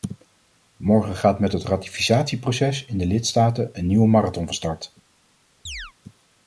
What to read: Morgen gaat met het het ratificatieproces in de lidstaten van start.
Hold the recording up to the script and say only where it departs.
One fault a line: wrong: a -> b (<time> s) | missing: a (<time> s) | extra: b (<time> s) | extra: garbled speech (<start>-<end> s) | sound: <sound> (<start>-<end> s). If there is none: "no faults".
missing: het (1.6 s)
extra: een nieuwe marathon (3.7 s)
sound: chirp (5.7-5.9 s)